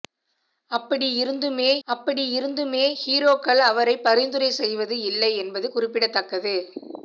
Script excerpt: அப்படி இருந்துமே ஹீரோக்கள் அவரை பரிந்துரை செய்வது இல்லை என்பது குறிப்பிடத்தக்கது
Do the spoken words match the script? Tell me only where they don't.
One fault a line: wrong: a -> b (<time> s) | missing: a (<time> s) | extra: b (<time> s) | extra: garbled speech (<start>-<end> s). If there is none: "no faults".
extra: அப்படி இருந்துமே (1.9 s)